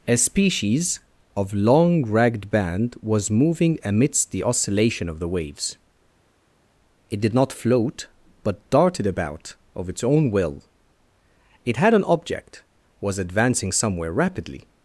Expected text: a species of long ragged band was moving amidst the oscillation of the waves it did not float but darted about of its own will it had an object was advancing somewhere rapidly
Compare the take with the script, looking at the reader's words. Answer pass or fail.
pass